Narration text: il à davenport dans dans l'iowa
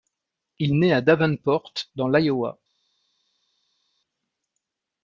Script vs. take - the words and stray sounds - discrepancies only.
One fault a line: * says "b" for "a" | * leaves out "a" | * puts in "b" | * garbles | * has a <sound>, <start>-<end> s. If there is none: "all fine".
* puts in "naît"
* leaves out "dans"